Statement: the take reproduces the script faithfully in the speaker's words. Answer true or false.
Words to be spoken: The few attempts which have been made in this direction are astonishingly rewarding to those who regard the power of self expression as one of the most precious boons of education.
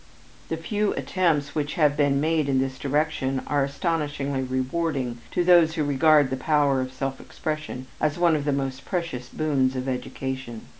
true